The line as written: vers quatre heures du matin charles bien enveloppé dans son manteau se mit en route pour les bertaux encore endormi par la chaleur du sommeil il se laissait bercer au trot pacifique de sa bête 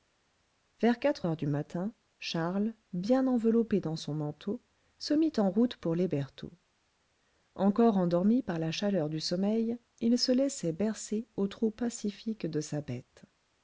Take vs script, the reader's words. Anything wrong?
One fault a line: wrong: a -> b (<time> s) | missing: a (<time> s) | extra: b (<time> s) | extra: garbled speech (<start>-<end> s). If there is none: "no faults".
no faults